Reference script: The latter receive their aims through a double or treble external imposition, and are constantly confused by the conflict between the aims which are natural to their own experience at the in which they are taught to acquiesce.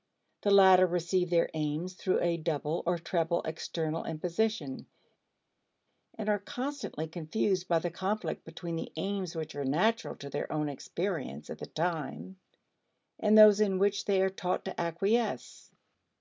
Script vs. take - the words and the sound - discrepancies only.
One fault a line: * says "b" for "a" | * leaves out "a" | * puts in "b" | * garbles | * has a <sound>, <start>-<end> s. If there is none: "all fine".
* puts in "time and those"